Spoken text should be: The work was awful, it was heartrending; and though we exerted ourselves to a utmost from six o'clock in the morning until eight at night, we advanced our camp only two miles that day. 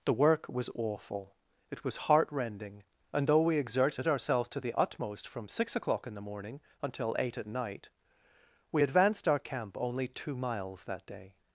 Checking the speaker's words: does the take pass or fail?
fail